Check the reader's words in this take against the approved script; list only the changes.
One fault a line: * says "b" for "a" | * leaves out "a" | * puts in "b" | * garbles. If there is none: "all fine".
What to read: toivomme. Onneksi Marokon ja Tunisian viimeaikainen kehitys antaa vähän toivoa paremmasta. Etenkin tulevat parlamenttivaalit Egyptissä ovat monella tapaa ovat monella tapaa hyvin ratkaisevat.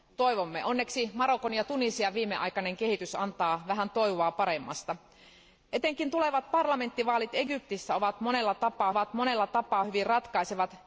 all fine